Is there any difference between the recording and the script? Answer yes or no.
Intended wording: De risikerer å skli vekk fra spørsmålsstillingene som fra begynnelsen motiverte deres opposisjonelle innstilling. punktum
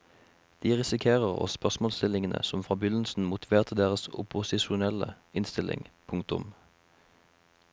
yes